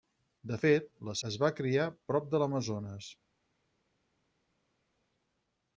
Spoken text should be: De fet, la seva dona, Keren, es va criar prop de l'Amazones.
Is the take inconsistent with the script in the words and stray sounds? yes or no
yes